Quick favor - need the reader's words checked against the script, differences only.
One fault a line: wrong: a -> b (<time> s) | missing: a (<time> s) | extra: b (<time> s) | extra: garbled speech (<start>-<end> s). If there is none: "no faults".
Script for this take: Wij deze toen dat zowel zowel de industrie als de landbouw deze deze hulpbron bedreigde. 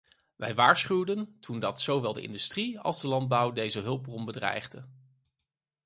wrong: deze -> waarschuwden (0.6 s)
missing: zowel (2.1 s)
missing: deze (3.8 s)